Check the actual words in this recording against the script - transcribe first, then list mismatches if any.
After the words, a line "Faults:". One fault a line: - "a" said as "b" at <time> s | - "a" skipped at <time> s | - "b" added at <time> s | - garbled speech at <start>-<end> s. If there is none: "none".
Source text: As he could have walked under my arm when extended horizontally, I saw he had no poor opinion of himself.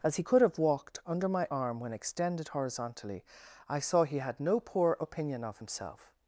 As he could have walked under my arm when extended horizontally, I saw he had no poor opinion of himself.
Faults:
none